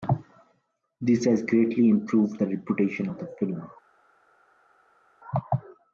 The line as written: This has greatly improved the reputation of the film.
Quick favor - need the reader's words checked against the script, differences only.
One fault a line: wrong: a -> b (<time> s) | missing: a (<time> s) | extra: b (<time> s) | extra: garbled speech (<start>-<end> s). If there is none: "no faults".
no faults